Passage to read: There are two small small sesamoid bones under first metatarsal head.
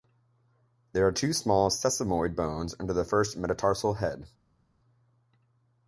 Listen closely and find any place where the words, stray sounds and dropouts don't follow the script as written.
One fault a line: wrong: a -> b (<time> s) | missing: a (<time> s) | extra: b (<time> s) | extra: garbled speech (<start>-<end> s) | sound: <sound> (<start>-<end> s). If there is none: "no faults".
missing: small (1.7 s)
extra: the (2.9 s)